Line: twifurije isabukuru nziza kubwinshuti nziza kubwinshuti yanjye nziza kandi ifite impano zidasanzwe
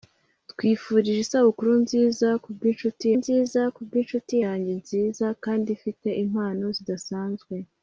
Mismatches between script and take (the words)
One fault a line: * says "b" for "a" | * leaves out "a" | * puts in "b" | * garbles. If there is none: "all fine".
all fine